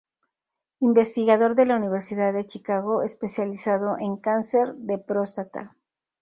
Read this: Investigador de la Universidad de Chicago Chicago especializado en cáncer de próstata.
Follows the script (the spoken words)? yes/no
no